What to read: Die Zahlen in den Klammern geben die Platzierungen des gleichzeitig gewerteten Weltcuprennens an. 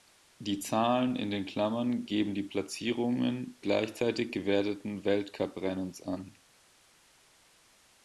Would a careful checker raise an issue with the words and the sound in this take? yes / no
yes